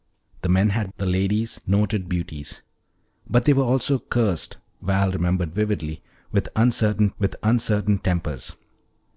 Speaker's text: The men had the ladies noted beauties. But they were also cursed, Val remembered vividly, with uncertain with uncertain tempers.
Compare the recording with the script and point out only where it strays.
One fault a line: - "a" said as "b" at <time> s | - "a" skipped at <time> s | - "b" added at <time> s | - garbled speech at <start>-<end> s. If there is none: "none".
none